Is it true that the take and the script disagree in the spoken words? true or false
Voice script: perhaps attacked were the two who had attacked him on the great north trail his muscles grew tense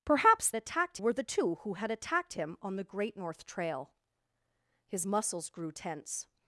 false